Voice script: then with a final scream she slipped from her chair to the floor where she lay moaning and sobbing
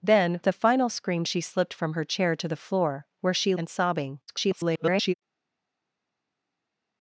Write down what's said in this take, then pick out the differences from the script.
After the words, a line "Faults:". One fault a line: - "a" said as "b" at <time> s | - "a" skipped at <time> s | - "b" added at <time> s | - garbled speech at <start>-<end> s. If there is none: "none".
then a final scream she slipped from her chair to the floor where she and sobbing [garbled]
Faults:
- "with" skipped at 0.4 s
- "lay moaning" skipped at 3.6 s
- garbled speech at 4.3-5.1 s